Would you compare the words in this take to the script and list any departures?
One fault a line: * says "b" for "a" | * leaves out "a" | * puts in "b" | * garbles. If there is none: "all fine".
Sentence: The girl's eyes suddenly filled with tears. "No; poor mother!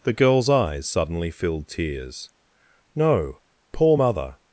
* leaves out "with"